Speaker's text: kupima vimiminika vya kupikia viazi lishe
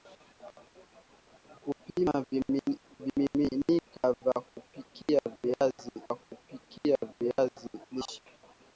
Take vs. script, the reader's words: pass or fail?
fail